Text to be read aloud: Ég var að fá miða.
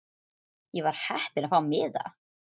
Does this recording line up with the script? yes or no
no